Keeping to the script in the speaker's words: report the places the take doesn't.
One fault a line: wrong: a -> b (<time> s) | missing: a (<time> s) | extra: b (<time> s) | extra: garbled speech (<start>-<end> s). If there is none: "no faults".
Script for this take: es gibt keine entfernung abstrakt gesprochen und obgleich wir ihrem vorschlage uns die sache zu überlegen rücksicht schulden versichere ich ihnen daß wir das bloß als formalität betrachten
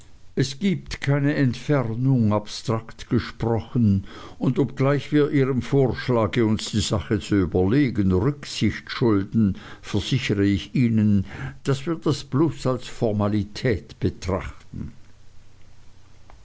no faults